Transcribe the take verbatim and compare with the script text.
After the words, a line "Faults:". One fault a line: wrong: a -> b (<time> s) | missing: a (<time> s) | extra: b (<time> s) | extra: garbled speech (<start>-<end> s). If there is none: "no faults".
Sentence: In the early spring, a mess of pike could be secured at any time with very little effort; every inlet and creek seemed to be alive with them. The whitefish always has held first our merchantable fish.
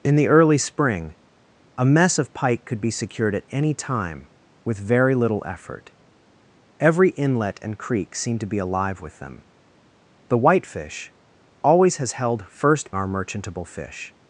In the early spring, a mess of pike could be secured at any time with very little effort; every inlet and creek seemed to be alive with them. The whitefish always has held first our merchantable fish.
Faults:
no faults